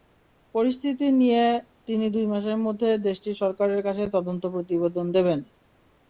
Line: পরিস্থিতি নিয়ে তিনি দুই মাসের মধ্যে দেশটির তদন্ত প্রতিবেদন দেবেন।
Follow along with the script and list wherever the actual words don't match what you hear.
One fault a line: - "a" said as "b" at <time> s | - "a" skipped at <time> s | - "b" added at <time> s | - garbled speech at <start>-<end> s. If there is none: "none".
- "সরকারের কাছে" added at 3.4 s